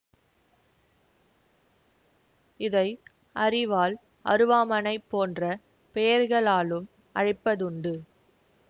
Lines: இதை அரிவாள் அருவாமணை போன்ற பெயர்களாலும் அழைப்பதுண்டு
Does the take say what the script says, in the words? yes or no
yes